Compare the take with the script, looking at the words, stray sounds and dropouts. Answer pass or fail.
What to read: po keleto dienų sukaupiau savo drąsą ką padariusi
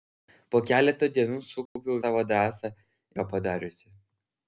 fail